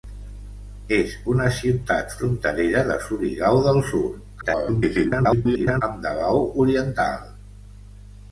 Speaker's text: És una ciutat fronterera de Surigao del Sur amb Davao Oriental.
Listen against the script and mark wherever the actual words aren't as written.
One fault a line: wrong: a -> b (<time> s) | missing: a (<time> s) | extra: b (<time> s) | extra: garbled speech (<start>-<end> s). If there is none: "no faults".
extra: garbled speech (4.4-5.8 s)